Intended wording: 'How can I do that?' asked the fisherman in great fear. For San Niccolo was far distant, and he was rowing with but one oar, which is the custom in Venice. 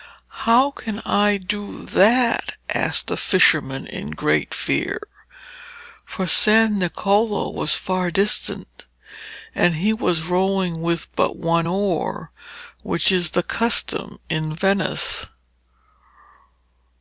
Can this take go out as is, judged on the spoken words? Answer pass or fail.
pass